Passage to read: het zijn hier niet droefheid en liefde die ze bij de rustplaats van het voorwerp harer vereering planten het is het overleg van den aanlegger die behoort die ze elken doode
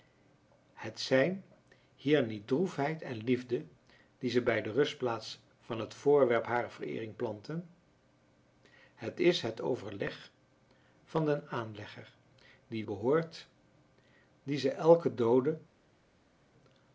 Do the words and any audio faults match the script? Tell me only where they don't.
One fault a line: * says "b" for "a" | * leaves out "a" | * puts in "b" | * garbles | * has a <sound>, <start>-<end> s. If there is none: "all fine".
all fine